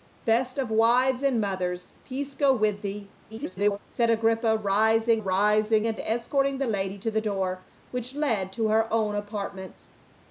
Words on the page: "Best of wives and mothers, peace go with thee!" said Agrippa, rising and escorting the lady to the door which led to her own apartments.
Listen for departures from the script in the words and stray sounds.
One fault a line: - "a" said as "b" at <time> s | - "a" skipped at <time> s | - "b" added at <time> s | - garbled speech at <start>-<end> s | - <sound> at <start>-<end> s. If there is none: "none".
- garbled speech at 3.3-3.8 s
- "rising" added at 5.2 s